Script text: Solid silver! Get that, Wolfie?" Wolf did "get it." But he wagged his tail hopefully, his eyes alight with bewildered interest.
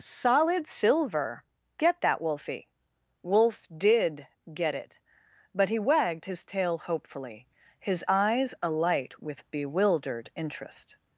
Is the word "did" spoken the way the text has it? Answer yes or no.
yes